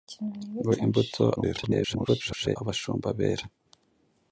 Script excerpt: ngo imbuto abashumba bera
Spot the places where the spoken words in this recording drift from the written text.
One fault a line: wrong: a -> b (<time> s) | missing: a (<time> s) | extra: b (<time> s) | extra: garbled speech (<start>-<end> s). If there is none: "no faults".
extra: garbled speech (1.4-2.6 s)